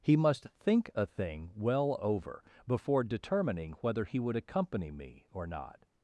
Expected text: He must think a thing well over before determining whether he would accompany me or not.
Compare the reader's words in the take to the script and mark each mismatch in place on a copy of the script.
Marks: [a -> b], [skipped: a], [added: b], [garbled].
He must think a thing well over before determining whether he would accompany me or not.